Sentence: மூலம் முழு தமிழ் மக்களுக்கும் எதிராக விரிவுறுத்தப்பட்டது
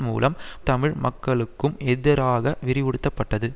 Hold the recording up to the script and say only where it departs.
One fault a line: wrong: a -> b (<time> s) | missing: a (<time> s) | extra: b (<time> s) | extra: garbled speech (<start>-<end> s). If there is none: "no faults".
missing: முழு (0.3 s)